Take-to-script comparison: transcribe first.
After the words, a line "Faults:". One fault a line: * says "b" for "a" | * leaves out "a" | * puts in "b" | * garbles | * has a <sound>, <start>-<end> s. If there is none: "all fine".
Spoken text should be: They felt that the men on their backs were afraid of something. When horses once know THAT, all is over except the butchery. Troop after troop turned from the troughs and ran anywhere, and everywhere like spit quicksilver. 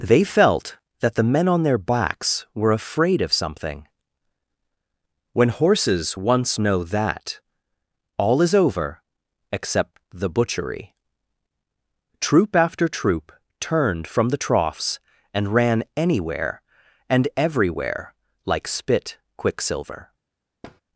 They felt that the men on their backs were afraid of something. When horses once know THAT, all is over except the butchery. Troop after troop turned from the troughs and ran anywhere, and everywhere like spit quicksilver.
Faults:
* has a thud, 20.6-20.8 s